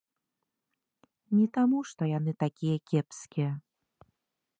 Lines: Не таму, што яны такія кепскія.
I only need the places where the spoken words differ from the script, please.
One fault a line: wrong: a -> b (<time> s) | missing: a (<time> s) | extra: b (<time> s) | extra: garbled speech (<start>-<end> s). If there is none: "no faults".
no faults